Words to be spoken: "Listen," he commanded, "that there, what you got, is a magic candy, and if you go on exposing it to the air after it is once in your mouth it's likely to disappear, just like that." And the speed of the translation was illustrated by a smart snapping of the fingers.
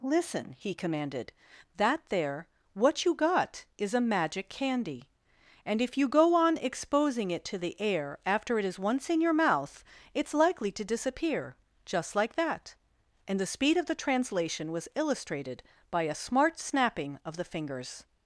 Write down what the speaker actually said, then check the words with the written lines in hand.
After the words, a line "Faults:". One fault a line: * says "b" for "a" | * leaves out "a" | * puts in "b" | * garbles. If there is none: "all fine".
"Listen," he commanded, "that there, what you got, is a magic candy, and if you go on exposing it to the air after it is once in your mouth it's likely to disappear, just like that." And the speed of the translation was illustrated by a smart snapping of the fingers.
Faults:
all fine